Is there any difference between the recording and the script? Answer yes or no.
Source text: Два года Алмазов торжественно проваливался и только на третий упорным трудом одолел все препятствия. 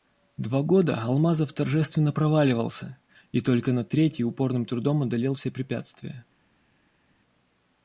no